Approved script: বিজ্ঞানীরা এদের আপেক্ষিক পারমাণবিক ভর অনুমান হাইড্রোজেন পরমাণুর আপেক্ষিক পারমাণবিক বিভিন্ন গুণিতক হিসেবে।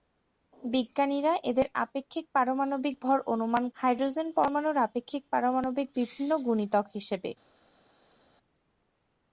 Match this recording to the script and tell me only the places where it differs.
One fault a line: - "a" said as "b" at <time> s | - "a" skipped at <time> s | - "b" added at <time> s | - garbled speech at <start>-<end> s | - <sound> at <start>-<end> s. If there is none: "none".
none